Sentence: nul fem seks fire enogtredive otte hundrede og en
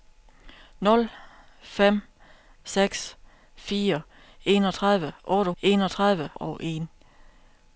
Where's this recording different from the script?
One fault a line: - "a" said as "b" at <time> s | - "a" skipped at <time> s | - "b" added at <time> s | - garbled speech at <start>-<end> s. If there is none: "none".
- "hundrede" said as "enogtredive" at 5.6 s